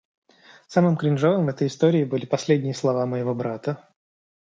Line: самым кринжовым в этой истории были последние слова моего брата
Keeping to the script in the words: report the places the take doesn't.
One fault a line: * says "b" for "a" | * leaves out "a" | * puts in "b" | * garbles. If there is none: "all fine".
all fine